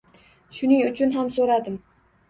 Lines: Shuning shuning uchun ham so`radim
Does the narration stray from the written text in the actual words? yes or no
yes